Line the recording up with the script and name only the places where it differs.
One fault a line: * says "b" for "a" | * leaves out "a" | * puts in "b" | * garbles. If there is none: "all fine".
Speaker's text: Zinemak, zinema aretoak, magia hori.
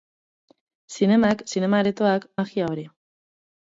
all fine